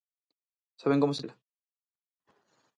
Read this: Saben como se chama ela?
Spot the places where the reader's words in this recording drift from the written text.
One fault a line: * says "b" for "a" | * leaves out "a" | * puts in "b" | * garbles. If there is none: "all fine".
* leaves out "chama"